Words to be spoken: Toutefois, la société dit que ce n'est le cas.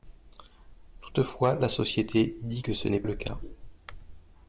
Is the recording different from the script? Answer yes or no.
no